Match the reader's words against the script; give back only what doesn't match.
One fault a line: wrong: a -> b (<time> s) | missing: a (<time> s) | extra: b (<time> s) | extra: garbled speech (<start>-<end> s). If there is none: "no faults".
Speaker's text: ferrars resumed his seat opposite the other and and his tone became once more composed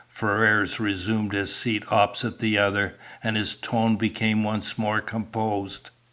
missing: and (3.4 s)